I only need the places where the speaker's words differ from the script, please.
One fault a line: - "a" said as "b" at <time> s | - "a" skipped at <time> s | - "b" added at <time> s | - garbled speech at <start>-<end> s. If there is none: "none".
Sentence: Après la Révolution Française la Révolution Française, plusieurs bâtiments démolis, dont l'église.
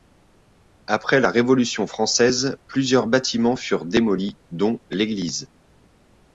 - "la Révolution Française" skipped at 2.6 s
- "furent" added at 3.6 s